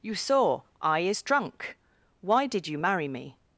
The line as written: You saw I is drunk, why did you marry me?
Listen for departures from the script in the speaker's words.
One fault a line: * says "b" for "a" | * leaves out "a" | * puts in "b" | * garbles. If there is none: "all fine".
all fine